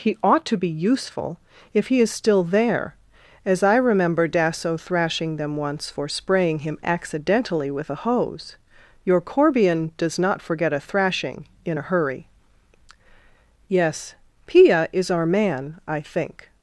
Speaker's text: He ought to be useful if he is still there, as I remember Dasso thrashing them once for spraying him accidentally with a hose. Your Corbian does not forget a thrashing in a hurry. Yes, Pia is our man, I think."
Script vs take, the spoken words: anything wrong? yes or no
no